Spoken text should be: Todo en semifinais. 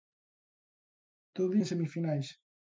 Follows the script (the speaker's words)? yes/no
yes